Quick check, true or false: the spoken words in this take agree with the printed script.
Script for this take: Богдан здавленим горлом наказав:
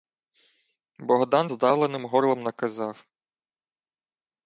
true